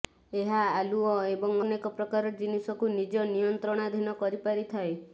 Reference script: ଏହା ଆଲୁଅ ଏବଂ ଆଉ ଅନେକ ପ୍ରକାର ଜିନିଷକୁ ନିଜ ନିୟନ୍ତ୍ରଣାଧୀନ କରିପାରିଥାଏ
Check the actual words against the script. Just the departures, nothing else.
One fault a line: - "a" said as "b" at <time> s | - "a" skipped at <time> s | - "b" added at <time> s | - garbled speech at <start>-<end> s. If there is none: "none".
- "ଆଉ" skipped at 1.5 s